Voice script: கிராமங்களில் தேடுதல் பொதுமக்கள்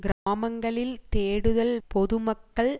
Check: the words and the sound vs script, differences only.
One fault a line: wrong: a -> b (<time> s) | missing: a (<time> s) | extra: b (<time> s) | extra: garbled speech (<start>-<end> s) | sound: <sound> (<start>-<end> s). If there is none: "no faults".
sound: dropout (0.1-0.3 s)